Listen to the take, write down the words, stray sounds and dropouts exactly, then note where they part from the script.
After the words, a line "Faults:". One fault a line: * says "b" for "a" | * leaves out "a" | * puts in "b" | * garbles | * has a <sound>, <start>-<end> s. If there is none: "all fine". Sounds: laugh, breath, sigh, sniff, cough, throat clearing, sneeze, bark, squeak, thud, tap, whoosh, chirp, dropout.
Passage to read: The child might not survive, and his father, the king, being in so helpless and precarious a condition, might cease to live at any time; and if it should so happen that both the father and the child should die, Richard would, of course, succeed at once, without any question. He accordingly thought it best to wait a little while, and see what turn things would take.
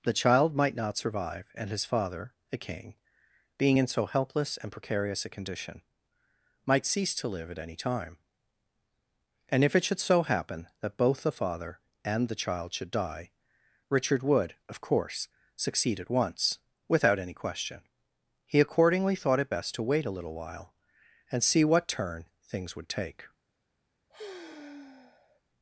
The child might not survive, and his father, a king, being in so helpless and precarious a condition, might cease to live at any time; and if it should so happen that both the father and the child should die, Richard would, of course, succeed at once, without any question. He accordingly thought it best to wait a little while, and see what turn things would take.
Faults:
* says "a" for "the"
* has a sigh, 24.1-25.4 s